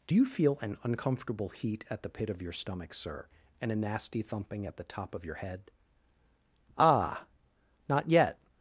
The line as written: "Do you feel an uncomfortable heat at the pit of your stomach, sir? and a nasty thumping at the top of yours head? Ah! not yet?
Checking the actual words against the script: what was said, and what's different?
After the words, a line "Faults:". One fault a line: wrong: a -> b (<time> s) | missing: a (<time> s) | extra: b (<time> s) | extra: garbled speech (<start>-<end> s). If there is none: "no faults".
"Do you feel an uncomfortable heat at the pit of your stomach, sir? and a nasty thumping at the top of your head? Ah! not yet?
Faults:
wrong: yours -> your (5.2 s)